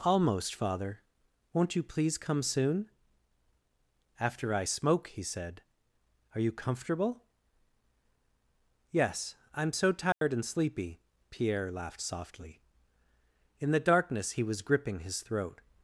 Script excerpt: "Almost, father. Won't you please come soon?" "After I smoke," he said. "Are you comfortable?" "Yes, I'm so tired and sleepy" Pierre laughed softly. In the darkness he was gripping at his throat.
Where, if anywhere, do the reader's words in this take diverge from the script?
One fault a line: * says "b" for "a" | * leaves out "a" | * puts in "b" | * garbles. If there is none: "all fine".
* leaves out "at"